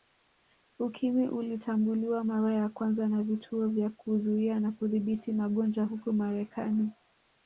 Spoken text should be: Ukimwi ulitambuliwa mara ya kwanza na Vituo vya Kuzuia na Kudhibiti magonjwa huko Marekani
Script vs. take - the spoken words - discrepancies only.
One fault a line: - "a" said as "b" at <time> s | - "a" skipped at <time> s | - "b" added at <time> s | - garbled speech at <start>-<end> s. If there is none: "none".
none